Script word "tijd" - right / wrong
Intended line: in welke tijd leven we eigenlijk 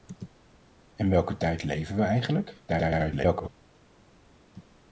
right